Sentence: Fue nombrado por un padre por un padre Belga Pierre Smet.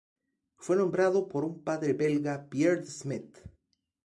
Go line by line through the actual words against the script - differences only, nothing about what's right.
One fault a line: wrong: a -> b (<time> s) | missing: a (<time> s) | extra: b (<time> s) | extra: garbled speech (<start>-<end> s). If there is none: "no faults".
missing: por un padre (1.9 s)
extra: De (2.8 s)